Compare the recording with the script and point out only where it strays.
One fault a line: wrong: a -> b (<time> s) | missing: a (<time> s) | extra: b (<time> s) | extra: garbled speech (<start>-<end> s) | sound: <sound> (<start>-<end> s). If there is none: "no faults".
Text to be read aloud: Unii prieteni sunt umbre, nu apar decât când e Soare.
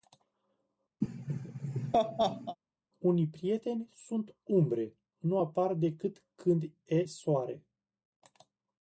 sound: laugh (1.0-2.6 s)